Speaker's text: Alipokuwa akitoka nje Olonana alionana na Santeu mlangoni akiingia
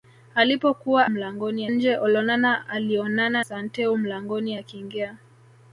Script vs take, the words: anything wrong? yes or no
yes